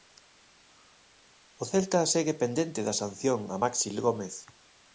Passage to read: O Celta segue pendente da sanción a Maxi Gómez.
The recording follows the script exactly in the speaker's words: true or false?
true